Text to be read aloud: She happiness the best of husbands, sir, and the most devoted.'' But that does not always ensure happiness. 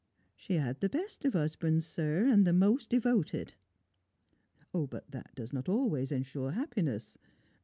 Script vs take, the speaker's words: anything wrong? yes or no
yes